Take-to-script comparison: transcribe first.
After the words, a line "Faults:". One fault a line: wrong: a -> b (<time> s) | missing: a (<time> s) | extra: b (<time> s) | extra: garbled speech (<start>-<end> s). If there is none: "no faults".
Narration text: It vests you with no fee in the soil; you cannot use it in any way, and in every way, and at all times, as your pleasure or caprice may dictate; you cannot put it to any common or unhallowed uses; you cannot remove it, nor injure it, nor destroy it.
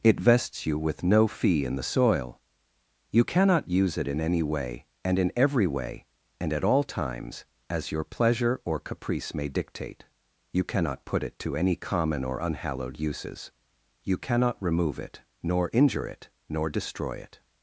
It vests you with no fee in the soil; you cannot use it in any way, and in every way, and at all times, as your pleasure or caprice may dictate; you cannot put it to any common or unhallowed uses; you cannot remove it, nor injure it, nor destroy it.
Faults:
no faults